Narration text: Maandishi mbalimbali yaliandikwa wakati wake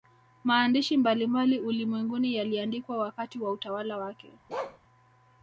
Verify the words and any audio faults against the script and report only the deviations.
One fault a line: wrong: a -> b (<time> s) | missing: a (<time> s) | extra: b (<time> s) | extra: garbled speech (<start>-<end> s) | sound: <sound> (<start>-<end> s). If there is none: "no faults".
extra: ulimwenguni (1.6 s)
extra: wa utawala (3.4 s)
sound: bark (4.5-4.8 s)